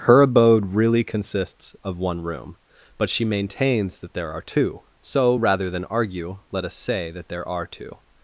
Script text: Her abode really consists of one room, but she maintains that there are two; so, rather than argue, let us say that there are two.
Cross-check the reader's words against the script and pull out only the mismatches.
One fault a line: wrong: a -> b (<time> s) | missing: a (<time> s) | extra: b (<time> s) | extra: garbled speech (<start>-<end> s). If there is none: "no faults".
no faults